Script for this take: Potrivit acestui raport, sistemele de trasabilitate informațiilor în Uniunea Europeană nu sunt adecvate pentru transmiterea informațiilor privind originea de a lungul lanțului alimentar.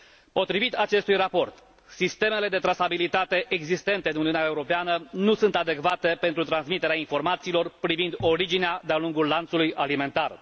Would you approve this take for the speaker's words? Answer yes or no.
no